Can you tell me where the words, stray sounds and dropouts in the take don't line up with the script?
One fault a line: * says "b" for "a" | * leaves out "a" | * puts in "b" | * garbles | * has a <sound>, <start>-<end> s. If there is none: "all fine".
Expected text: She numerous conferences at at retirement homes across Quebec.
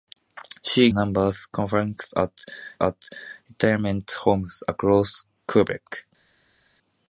all fine